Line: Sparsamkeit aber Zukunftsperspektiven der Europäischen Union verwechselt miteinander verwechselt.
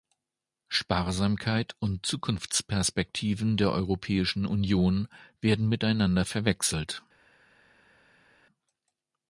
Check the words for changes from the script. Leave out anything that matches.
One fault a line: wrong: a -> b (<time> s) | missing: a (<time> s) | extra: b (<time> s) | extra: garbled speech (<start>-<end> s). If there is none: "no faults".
wrong: aber -> und (1.8 s)
wrong: verwechselt -> werden (5.4 s)